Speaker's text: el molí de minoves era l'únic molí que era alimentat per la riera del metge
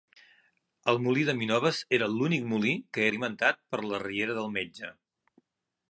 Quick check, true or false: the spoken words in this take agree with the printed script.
false